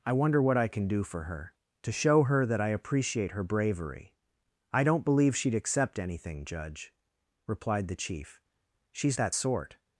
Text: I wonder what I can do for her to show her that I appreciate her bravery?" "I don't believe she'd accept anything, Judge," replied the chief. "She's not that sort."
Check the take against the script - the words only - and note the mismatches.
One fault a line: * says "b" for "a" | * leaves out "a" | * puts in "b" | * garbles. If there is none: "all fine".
* leaves out "not"